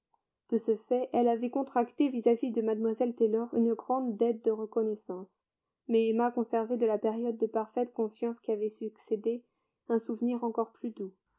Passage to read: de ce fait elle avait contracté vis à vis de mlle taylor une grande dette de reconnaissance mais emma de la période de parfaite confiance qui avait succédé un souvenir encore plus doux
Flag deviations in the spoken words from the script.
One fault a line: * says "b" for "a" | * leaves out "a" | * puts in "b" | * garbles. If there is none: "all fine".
* puts in "conservait"